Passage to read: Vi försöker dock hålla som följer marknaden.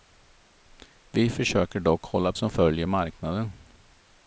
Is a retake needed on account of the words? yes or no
no